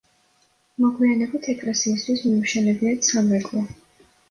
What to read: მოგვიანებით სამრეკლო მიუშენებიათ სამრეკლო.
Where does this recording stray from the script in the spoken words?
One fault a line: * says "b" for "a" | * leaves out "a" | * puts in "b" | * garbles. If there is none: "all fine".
* says "ეკლესიისთვის" for "სამრეკლო"